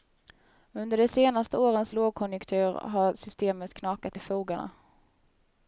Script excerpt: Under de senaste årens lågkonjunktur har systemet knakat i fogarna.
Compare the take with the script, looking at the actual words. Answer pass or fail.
pass